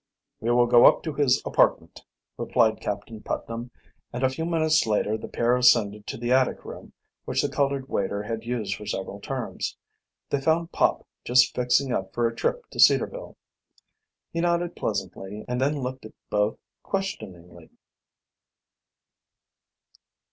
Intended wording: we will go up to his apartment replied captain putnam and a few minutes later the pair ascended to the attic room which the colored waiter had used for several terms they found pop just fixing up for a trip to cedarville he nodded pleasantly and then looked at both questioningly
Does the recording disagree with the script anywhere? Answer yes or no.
no